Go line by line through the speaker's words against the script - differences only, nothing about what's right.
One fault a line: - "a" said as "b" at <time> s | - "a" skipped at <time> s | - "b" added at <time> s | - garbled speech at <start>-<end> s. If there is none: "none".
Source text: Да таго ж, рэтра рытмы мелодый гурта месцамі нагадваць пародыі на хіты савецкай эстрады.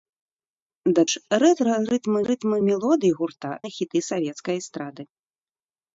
- "таго" skipped at 1.0 s
- "рытмы" added at 2.3 s
- "месцамі нагадваць пародыі" skipped at 3.5 s